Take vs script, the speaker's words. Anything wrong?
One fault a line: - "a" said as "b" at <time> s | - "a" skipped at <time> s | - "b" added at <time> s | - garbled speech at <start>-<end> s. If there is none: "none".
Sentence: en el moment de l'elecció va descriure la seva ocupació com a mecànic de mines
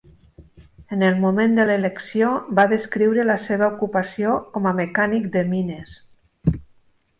none